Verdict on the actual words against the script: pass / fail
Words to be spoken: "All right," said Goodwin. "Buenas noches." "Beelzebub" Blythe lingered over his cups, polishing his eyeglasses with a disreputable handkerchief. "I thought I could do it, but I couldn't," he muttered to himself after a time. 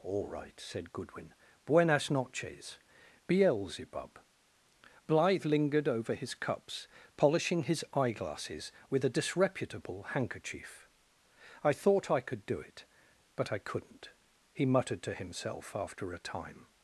pass